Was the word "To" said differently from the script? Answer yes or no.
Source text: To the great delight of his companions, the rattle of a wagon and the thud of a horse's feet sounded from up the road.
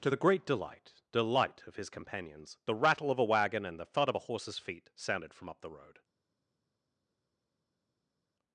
no